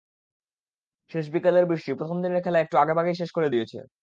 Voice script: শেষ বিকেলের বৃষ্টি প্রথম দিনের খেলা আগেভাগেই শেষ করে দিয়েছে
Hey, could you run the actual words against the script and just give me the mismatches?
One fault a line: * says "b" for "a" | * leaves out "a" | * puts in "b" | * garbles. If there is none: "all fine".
* puts in "একটু"